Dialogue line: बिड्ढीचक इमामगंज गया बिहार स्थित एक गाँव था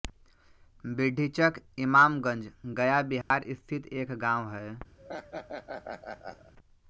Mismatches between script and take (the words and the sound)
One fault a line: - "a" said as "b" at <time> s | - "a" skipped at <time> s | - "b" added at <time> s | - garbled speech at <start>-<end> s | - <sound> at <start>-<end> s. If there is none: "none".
- dropout at 3.2-3.3 s
- "था" said as "है" at 4.5 s
- laugh at 5.0-6.5 s